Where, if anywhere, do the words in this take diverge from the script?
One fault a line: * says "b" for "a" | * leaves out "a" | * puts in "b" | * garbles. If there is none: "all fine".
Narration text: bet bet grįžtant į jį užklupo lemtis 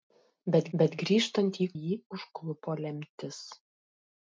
all fine